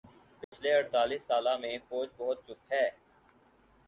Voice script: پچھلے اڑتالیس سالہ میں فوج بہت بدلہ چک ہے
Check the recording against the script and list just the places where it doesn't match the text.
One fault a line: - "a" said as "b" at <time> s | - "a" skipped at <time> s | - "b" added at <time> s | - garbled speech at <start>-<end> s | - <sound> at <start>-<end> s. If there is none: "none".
- dropout at 0.4-0.5 s
- "بدلہ" skipped at 2.4 s